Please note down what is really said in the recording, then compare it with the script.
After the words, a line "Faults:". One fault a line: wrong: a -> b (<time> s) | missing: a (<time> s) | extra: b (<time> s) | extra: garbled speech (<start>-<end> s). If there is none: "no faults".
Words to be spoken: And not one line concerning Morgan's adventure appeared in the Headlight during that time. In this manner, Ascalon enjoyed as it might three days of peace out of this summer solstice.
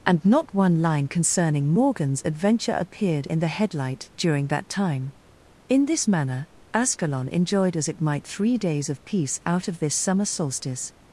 And not one line concerning Morgan's adventure appeared in the Headlight during that time. In this manner, Ascalon enjoyed as it might three days of peace out of this summer solstice.
Faults:
no faults